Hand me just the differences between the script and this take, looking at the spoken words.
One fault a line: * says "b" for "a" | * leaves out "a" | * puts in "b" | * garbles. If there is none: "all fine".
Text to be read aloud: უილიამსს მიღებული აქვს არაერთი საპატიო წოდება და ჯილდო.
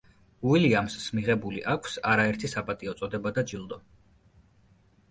all fine